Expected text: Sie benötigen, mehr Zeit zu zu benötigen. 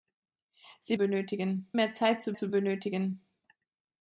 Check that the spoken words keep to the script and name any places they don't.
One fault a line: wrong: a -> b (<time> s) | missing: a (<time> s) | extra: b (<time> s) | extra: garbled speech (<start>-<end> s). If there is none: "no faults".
no faults